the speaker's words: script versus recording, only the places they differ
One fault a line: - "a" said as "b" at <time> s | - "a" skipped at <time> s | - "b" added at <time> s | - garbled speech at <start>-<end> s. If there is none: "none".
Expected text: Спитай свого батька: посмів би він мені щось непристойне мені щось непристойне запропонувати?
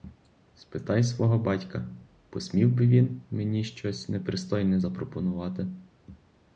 - "мені щось непристойне" skipped at 4.8 s